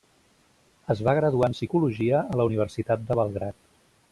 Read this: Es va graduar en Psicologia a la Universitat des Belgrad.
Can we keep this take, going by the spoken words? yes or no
no